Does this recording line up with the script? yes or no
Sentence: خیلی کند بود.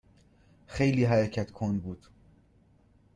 no